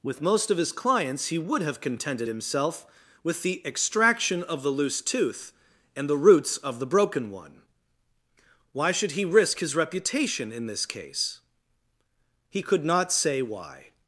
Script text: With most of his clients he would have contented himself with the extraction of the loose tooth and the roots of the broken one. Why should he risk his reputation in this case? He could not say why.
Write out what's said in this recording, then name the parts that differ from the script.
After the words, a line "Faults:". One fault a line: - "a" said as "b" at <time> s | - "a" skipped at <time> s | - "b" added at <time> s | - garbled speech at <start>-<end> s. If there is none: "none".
With most of his clients he would have contented himself with the extraction of the loose tooth and the roots of the broken one. Why should he risk his reputation in this case? He could not say why.
Faults:
none